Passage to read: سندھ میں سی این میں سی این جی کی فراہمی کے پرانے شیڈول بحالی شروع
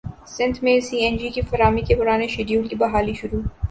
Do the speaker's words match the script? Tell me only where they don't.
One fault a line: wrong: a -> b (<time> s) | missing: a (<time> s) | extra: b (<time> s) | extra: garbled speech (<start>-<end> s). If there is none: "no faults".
missing: میں سی این (1.2 s)
extra: کی (2.7 s)